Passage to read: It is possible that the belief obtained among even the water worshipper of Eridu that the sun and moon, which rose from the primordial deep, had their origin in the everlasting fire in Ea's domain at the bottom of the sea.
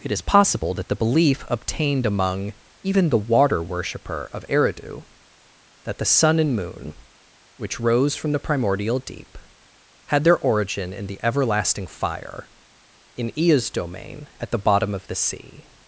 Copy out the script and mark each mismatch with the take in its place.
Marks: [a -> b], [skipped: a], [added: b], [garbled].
It is possible that the belief obtained among even the water worshipper of Eridu that the sun and moon, which rose from the primordial deep, had their origin in the everlasting fire in Ea's domain at the bottom of the sea.